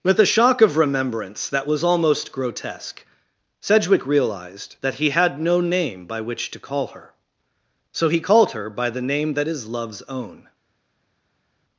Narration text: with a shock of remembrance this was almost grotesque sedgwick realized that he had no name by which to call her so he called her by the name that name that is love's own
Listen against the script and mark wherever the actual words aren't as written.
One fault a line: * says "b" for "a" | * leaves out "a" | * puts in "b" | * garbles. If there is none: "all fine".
* says "that" for "this"
* leaves out "name that"